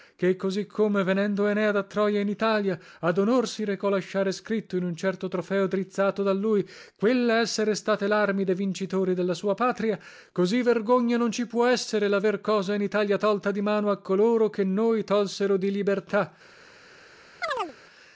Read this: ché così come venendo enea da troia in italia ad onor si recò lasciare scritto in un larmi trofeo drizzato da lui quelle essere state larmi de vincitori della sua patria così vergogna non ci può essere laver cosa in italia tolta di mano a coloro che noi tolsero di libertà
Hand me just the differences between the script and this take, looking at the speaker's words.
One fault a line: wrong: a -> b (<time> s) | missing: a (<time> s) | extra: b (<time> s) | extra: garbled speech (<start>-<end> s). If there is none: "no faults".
wrong: larmi -> certo (5.0 s)